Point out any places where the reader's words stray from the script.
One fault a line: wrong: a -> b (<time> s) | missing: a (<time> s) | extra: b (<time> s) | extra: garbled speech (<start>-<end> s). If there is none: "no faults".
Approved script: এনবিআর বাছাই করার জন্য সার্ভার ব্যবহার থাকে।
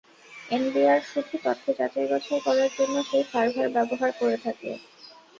extra: শুধু তথ্য যাচাই (1.1 s)
extra: সেই (3.1 s)
extra: করে (4.2 s)